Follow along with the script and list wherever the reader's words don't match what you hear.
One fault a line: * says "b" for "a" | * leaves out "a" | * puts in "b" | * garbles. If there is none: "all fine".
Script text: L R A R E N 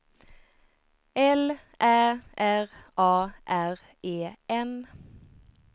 * puts in "Ä"